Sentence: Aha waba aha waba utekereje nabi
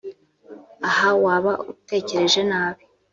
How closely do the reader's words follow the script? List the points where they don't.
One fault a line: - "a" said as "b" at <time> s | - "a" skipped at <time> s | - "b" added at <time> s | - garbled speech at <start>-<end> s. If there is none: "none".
- "aha waba" skipped at 1.5 s